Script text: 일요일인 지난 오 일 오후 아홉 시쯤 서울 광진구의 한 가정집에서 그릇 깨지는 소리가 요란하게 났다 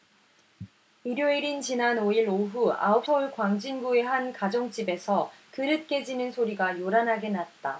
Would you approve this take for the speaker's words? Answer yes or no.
no